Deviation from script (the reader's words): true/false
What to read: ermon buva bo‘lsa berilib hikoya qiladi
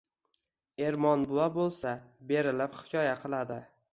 false